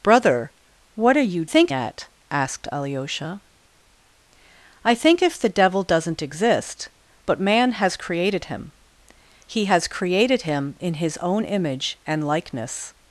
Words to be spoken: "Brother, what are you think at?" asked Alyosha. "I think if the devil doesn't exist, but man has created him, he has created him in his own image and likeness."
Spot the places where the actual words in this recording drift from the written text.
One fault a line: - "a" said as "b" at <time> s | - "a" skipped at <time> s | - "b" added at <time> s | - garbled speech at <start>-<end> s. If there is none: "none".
none